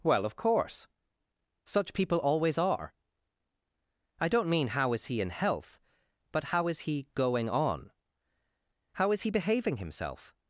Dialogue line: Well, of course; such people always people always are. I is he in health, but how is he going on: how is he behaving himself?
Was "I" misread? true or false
true